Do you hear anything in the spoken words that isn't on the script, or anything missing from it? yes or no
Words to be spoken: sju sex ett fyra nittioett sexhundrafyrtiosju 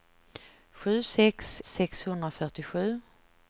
yes